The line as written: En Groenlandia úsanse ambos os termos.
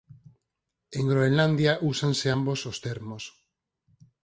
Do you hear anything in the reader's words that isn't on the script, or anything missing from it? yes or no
no